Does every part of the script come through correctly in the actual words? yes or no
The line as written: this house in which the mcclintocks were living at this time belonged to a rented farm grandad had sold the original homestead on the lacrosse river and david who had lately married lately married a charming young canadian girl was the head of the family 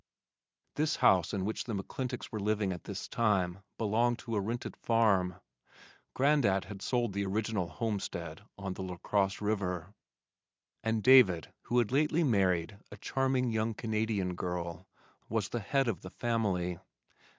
no